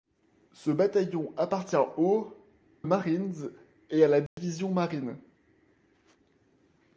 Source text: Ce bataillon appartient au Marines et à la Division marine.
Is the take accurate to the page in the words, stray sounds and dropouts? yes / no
no